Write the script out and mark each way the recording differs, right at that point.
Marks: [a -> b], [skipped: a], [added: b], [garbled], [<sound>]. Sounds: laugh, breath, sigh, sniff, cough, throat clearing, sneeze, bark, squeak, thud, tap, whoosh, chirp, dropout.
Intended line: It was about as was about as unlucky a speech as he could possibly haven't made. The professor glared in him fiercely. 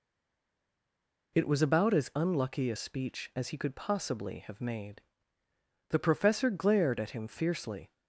It was about as [skipped: was about as] unlucky a speech as he could possibly [haven't -> have] made. The professor glared [in -> at] him fiercely.